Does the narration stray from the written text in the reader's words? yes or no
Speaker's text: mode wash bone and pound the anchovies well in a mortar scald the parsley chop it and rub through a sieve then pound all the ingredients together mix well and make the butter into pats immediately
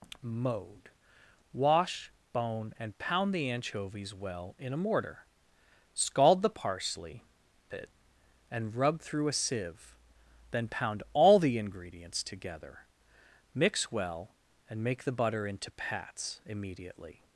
yes